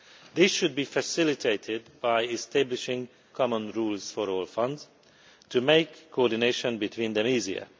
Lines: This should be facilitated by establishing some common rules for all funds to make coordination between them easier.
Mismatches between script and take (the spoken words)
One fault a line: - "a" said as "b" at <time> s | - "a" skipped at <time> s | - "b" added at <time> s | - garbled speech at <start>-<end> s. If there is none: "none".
- "some" skipped at 3.1 s